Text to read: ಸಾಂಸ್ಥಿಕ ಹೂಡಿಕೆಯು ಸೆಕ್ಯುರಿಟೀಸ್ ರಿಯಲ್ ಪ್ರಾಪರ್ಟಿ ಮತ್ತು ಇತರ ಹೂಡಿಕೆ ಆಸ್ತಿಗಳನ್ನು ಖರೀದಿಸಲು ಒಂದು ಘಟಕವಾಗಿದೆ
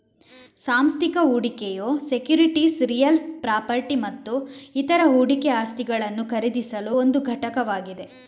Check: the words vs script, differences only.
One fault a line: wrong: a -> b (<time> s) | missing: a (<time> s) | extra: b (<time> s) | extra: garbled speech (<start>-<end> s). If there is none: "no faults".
no faults